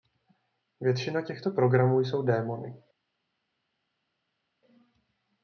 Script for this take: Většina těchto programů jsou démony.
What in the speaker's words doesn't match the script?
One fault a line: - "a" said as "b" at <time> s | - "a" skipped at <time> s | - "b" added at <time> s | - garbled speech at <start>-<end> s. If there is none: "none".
none